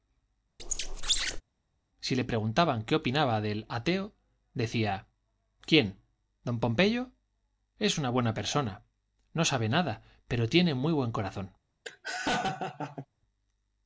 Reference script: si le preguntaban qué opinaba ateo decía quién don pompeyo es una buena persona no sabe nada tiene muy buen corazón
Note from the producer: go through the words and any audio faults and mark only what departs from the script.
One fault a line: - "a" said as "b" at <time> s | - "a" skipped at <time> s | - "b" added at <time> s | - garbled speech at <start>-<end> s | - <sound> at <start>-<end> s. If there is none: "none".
- squeak at 0.6-1.4 s
- "del" added at 3.4 s
- "pero" added at 10.3 s
- laugh at 11.8-13.1 s